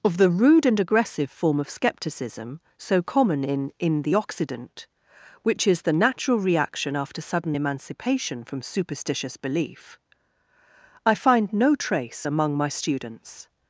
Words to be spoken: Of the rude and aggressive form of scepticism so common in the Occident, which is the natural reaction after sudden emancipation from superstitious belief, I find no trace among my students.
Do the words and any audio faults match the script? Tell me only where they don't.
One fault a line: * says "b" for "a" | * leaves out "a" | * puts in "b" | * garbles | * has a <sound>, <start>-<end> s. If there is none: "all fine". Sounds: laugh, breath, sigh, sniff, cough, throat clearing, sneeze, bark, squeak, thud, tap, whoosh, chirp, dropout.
* puts in "in"